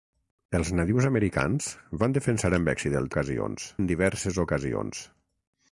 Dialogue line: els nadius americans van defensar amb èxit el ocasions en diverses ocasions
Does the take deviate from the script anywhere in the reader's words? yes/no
no